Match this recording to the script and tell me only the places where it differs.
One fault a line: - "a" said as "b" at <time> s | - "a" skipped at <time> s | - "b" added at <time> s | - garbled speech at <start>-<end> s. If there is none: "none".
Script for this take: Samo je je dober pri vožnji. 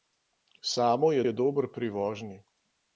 none